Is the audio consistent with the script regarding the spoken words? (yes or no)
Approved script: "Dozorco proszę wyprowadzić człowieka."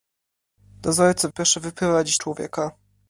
yes